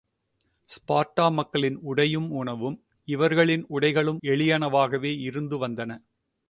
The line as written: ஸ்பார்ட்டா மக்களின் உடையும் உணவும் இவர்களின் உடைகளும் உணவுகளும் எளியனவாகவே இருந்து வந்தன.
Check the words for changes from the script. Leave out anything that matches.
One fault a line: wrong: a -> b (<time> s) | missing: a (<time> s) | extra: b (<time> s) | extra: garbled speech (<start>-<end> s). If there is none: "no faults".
missing: உணவுகளும் (4.2 s)